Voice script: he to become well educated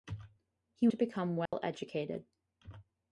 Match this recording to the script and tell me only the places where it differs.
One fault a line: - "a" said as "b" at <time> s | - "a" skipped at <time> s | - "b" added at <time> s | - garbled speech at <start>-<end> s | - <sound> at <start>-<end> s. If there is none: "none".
- dropout at 1.5-1.5 s